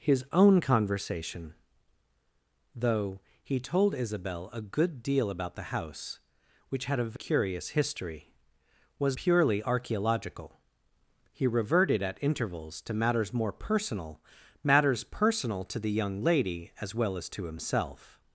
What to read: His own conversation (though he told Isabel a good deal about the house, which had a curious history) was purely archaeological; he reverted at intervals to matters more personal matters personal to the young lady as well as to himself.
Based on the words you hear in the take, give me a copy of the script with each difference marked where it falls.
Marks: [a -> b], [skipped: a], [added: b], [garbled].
His own conversation (though he told Isabel a good deal about the house, which had a curious history) was purely archaeological; he reverted at intervals to matters more personal matters personal to the young lady as well as to himself.